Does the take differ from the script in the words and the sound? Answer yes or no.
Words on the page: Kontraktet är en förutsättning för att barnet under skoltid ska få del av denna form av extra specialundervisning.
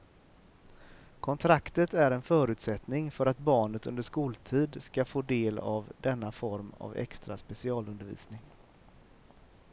no